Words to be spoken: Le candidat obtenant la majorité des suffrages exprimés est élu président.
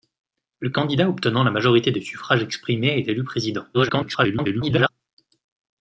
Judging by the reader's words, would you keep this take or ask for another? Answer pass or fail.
fail